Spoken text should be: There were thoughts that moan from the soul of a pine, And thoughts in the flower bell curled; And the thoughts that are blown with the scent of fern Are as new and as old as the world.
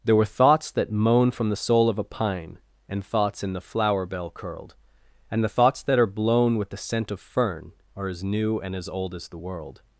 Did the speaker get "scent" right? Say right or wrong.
right